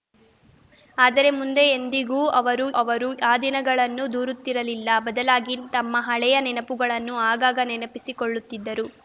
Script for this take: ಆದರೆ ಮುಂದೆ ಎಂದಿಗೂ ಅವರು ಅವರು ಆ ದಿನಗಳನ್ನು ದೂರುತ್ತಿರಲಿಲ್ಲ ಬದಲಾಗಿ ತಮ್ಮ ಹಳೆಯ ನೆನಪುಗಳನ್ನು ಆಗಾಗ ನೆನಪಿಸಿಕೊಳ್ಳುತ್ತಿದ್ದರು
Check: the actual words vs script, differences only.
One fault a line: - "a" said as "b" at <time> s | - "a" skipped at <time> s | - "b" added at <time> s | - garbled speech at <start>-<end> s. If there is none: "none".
none